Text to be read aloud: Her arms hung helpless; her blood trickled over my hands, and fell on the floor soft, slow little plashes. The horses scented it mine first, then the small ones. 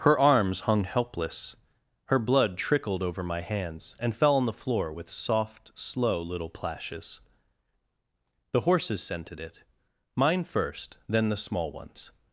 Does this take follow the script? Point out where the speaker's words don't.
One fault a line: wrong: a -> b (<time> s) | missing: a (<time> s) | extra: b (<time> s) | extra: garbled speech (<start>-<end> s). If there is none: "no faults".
extra: with (4.9 s)